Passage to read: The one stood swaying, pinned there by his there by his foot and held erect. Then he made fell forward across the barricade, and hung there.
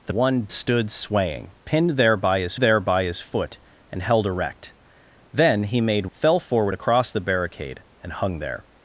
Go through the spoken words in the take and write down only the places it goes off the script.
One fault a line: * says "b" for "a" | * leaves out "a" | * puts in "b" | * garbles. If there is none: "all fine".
all fine